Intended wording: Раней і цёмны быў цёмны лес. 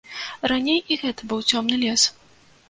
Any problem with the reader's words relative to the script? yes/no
yes